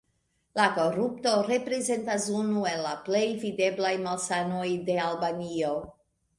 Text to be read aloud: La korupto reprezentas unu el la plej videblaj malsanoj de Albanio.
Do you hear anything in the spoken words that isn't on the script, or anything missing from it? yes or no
no